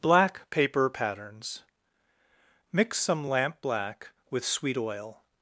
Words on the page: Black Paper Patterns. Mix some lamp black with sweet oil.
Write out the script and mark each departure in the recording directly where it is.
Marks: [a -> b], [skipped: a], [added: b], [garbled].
Black Paper Patterns. Mix some lamp black with sweet oil.